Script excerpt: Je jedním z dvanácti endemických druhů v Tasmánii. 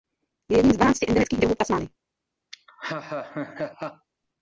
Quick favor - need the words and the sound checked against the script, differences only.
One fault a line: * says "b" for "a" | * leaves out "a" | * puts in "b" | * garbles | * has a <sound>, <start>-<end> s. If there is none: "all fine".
* has a laugh, 2.5-4.1 s